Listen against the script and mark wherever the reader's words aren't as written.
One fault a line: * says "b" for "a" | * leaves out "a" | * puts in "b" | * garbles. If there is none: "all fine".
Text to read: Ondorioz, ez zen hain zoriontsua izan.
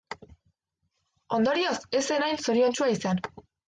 all fine